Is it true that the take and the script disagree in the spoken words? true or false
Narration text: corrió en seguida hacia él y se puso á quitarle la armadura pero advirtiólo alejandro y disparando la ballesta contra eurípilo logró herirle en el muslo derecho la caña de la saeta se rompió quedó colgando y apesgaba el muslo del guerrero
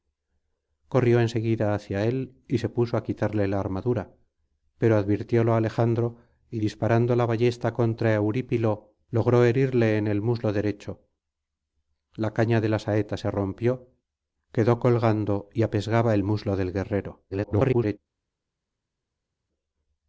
true